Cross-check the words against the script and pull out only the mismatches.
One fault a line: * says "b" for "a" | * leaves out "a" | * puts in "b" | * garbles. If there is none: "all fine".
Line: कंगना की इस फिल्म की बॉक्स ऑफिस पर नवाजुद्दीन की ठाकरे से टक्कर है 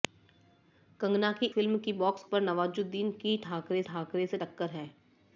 * leaves out "इस"
* leaves out "ऑफिस"
* puts in "ठाकरे"